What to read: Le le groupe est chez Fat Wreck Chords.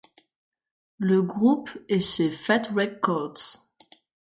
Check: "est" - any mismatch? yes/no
no